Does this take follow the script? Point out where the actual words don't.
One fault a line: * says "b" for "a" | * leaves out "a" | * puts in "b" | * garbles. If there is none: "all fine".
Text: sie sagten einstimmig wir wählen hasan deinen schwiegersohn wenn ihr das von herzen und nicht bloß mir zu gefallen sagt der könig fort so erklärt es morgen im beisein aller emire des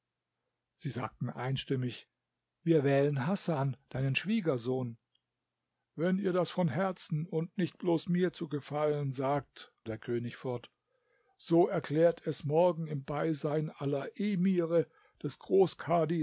all fine